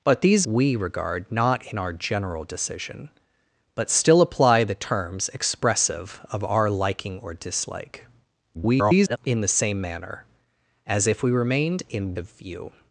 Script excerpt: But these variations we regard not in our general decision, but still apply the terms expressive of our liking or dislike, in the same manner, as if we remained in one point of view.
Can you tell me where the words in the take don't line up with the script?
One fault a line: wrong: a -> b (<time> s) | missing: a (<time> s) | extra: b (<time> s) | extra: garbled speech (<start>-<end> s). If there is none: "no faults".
missing: variations (0.5 s)
extra: garbled speech (8.5-9.2 s)
missing: one point (12.2 s)